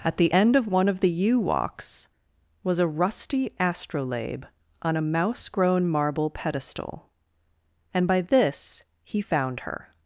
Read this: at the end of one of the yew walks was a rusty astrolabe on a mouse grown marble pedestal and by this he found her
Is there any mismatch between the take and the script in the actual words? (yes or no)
no